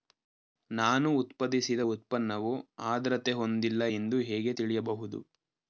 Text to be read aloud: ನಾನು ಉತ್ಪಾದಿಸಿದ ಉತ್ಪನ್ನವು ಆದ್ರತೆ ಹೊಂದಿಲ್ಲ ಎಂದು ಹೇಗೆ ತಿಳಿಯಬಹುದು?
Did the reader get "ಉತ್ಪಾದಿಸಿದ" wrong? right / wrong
right